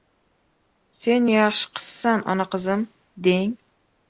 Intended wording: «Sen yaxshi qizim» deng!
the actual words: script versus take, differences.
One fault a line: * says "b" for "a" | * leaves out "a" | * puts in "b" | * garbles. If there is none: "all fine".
* puts in "qizsan ona"